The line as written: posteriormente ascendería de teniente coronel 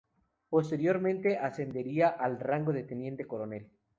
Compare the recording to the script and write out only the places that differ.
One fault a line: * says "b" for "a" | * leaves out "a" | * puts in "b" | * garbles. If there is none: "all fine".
* puts in "al rango"